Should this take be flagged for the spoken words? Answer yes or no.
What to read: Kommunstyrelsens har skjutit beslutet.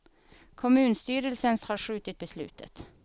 no